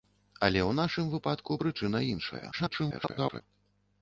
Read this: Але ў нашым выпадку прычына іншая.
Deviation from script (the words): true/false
true